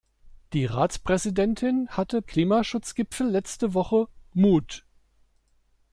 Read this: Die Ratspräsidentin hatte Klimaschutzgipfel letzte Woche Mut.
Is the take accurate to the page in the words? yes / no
yes